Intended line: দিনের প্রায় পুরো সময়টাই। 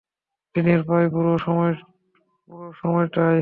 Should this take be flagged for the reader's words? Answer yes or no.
no